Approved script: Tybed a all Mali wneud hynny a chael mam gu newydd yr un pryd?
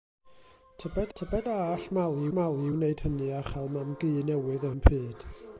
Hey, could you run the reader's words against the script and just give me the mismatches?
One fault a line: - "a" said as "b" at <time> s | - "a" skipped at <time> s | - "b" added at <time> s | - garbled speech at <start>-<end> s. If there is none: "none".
- "tybed" added at 1.2 s
- "Mali" added at 2.4 s
- "yr" skipped at 4.7 s